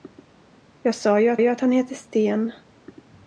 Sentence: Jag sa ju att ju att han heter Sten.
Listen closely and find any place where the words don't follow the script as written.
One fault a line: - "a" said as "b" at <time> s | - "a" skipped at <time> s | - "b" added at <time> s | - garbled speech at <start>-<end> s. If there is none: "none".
none